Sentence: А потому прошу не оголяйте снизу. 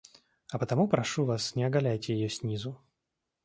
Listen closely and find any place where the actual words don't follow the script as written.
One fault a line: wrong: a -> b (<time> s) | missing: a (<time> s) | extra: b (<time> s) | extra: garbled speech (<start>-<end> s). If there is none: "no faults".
extra: вас (1.2 s)
extra: ее (2.1 s)